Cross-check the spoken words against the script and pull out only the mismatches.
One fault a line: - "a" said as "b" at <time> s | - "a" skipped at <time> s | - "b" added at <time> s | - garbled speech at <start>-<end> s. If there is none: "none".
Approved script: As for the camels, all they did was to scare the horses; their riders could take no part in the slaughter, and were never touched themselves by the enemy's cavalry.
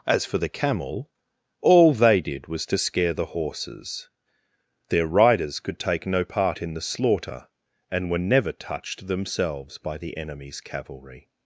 - "camels" said as "camel" at 0.5 s